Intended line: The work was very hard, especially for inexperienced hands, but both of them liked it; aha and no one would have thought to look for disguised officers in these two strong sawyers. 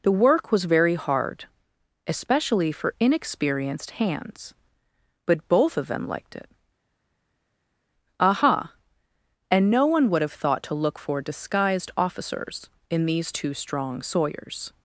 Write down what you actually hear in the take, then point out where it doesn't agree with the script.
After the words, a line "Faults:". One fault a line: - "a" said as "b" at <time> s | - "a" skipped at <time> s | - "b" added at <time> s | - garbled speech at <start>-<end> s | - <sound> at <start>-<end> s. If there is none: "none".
The work was very hard, especially for inexperienced hands, but both of them liked it; aha and no one would have thought to look for disguised officers in these two strong sawyers.
Faults:
none